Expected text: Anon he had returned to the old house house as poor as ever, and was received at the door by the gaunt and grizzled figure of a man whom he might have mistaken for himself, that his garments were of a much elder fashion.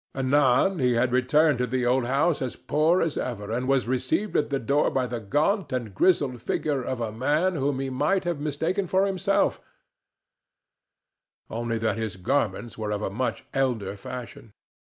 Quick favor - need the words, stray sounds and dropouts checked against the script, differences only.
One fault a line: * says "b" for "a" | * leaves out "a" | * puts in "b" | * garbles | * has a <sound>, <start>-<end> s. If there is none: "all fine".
* leaves out "house"
* puts in "only"